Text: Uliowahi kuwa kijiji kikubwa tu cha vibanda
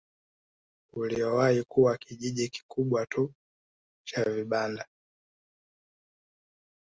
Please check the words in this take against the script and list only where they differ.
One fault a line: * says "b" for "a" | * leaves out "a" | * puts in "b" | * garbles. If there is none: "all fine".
all fine